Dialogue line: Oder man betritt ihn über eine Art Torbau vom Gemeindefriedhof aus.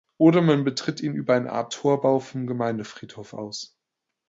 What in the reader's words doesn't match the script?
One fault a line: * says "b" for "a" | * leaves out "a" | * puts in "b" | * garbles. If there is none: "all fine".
all fine